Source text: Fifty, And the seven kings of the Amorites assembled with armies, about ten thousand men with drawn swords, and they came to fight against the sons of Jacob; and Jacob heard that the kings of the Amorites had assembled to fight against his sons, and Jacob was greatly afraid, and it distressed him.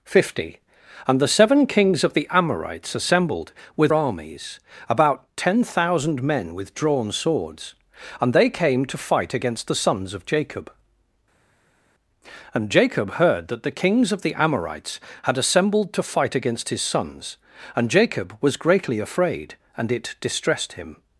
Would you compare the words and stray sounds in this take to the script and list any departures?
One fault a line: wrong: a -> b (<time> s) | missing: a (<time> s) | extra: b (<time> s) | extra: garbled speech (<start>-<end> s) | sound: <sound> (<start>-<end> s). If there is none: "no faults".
no faults